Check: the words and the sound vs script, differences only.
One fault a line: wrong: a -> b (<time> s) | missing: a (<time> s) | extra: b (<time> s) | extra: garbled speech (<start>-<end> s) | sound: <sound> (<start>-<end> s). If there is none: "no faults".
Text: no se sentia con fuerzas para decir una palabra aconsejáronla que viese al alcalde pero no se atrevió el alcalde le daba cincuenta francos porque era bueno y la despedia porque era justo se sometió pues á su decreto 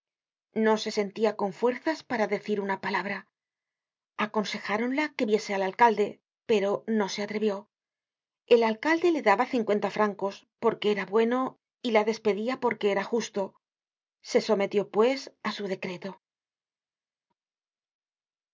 no faults